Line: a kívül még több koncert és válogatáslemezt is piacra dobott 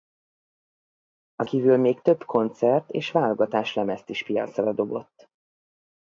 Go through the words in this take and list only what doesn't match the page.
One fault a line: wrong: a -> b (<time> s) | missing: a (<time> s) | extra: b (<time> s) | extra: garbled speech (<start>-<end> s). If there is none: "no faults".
no faults